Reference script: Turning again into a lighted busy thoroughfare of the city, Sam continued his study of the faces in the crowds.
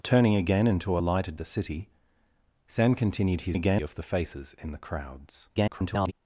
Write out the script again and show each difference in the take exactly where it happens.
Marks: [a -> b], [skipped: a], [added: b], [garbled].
Turning again into a lighted [skipped: busy thoroughfare of] the city, Sam continued his [study -> again] of the faces in the crowds. [garbled]